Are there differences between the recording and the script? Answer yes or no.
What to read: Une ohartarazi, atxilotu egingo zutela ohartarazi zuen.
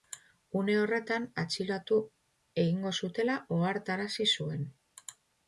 yes